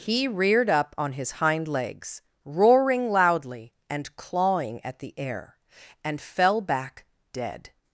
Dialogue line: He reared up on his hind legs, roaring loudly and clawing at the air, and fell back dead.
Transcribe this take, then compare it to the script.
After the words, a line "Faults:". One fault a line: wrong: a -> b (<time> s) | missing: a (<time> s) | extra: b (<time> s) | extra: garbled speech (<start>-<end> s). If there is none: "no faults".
He reared up on his hind legs, roaring loudly and clawing at the air, and fell back dead.
Faults:
no faults